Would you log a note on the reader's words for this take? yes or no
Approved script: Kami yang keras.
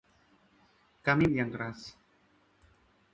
no